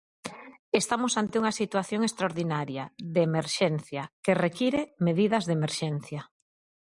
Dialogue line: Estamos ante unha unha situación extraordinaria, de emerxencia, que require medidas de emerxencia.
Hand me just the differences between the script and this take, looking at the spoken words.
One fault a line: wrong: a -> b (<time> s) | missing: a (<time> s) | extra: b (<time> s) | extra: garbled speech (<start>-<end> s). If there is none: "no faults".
missing: unha (1.6 s)